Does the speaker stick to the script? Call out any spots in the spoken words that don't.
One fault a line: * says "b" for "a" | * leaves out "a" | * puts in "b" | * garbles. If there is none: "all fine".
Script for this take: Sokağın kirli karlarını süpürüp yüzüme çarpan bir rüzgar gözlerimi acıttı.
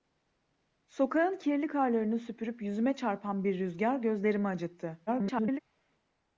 * garbles